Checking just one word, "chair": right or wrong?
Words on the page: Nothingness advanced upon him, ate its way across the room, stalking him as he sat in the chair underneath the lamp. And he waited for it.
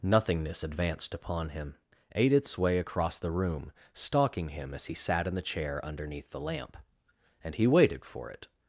right